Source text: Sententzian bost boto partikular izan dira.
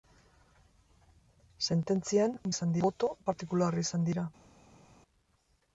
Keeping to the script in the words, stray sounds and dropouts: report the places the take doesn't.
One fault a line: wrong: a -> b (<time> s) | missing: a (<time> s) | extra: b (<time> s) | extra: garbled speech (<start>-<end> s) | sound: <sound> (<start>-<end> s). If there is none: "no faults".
wrong: bost -> izan (2.5 s)